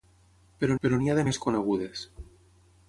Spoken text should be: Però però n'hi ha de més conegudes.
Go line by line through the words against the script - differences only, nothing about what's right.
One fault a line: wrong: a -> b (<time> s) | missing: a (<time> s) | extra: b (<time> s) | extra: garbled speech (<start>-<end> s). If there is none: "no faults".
no faults